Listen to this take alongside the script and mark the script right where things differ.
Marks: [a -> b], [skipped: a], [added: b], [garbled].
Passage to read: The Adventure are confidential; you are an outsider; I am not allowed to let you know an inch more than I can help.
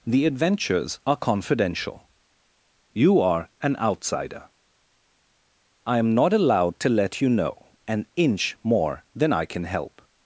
The [Adventure -> Adventures] are confidential; you are an outsider; I am not allowed to let you know an inch more than I can help.